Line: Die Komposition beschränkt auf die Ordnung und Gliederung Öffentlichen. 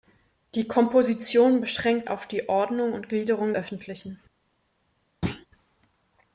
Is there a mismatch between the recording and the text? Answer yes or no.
no